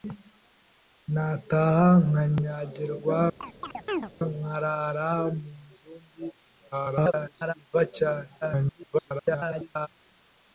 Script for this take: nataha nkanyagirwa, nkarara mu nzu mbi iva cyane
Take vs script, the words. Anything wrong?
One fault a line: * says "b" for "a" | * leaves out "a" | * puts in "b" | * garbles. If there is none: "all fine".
* garbles
* garbles